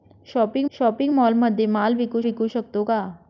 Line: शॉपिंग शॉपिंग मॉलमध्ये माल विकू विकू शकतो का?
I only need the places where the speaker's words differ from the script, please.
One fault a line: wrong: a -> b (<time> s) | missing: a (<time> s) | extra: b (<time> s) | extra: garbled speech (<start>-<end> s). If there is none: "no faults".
no faults